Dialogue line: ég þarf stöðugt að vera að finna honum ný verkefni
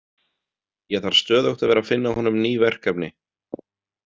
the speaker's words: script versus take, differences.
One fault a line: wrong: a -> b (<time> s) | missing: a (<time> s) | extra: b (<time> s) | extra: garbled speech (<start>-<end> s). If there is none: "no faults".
no faults